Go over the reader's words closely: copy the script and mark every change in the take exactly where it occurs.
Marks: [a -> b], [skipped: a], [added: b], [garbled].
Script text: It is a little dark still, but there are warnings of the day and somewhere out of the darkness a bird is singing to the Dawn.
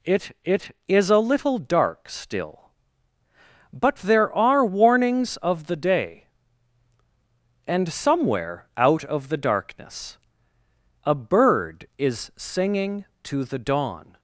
It [added: it] is a little dark still, but there are warnings of the day and somewhere out of the darkness a bird is singing to the Dawn.